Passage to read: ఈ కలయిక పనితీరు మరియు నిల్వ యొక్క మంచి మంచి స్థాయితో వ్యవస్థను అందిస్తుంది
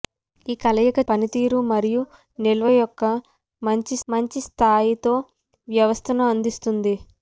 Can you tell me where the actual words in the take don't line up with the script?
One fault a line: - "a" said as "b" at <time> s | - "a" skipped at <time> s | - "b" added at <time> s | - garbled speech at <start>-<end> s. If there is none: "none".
none